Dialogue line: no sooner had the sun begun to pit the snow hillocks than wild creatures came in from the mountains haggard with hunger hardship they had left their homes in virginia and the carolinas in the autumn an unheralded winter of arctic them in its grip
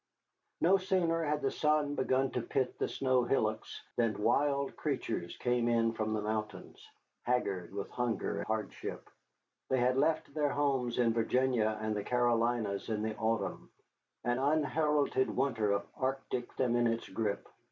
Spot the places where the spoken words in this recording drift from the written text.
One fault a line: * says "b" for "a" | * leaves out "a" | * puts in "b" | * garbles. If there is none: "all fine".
all fine